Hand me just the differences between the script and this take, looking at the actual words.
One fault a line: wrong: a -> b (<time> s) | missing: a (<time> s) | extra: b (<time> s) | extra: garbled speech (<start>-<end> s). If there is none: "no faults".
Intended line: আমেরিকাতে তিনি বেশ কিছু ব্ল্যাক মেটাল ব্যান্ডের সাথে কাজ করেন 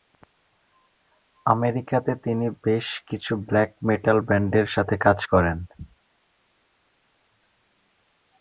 no faults